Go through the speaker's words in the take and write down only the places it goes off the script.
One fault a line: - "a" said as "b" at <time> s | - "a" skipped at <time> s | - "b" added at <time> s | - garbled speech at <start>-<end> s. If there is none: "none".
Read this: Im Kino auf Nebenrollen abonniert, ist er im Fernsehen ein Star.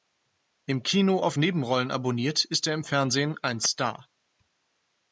none